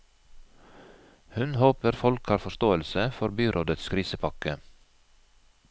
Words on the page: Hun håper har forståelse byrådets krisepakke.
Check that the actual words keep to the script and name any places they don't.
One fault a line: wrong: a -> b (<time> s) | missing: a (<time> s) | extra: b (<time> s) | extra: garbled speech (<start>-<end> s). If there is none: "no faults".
extra: folk (2.0 s)
extra: for (3.2 s)